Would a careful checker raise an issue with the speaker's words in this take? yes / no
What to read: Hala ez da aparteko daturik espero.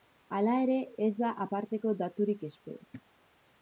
yes